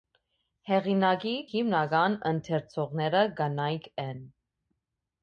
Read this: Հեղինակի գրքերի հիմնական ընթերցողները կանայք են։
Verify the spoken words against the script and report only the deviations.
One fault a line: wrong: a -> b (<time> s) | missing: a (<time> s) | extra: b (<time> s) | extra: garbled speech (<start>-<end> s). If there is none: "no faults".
missing: գրքերի (1.3 s)